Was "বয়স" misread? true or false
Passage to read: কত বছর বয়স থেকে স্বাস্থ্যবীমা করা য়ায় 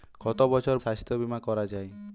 true